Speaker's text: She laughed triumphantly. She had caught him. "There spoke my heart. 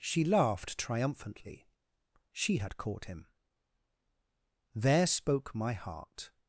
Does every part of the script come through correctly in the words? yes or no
yes